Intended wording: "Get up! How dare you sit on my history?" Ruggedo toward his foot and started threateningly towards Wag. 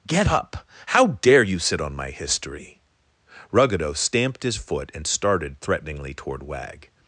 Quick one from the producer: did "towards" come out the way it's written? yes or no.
no